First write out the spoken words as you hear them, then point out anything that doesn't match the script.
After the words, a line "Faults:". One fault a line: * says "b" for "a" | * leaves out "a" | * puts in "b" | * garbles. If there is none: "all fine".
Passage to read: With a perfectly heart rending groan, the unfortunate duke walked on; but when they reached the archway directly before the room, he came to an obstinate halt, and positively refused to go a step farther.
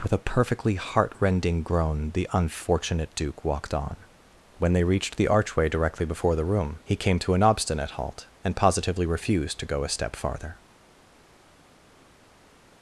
With a perfectly heart rending groan, the unfortunate duke walked on; when they reached the archway directly before the room, he came to an obstinate halt, and positively refused to go a step farther.
Faults:
* leaves out "but"